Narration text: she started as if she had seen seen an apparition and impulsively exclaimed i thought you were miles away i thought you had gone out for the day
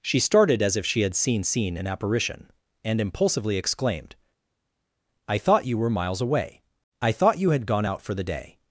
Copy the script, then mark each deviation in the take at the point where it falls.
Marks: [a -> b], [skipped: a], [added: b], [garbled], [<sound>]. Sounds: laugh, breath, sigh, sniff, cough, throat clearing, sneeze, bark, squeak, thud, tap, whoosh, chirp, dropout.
she started as if she had seen seen an apparition and impulsively exclaimed i thought you were miles away i thought you had gone out for the day